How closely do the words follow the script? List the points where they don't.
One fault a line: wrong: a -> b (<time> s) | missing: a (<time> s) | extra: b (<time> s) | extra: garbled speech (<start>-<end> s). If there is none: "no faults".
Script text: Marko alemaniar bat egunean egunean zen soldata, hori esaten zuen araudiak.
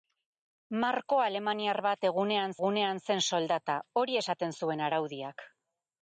no faults